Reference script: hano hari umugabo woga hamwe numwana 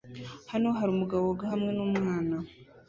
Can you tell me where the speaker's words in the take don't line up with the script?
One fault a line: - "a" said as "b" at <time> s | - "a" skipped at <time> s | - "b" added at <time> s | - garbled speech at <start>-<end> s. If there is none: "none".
none